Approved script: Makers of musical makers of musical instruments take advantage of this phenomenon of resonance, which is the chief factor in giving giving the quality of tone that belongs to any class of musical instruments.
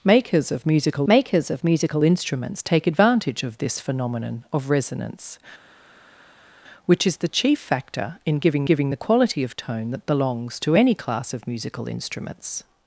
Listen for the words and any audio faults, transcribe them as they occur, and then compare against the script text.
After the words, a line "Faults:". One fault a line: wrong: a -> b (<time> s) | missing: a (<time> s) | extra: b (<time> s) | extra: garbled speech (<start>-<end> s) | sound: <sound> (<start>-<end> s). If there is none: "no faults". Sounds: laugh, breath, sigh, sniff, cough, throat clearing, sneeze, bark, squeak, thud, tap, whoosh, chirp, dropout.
Makers of musical makers of musical instruments take advantage of this phenomenon of resonance, which is the chief factor in giving giving the quality of tone that belongs to any class of musical instruments.
Faults:
no faults